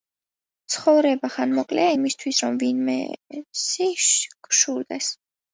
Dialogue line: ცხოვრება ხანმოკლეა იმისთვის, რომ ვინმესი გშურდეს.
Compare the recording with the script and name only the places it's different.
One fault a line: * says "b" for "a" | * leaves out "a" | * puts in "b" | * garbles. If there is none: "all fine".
all fine